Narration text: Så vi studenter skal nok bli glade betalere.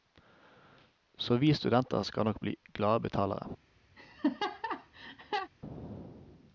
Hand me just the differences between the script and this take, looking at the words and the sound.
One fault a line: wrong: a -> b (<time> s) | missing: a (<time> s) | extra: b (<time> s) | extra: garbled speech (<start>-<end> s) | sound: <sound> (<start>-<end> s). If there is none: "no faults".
sound: laugh (4.0-5.5 s)